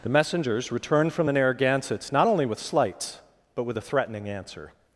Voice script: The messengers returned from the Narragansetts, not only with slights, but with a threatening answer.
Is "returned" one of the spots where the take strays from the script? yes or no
no